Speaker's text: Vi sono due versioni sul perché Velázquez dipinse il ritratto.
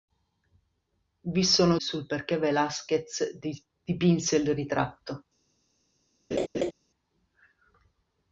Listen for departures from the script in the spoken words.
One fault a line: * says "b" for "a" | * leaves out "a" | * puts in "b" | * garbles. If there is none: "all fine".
* leaves out "due versioni"